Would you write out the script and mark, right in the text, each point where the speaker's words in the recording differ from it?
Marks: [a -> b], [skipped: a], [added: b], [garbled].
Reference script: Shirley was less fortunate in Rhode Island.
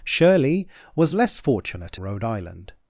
Shirley was less fortunate [skipped: in] Rhode Island.